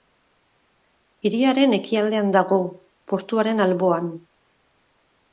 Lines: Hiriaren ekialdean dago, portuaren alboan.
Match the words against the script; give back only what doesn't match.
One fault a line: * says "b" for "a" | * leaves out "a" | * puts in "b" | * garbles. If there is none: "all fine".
all fine